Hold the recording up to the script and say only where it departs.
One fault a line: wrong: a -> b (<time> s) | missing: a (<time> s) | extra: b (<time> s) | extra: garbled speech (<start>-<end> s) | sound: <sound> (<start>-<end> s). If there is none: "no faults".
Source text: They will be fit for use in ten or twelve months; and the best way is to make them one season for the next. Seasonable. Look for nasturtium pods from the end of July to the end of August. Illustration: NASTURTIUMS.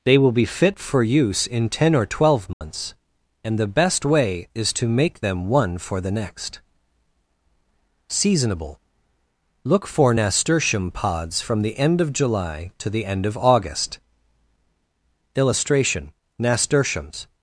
sound: dropout (2.5-2.6 s)
missing: season (5.8 s)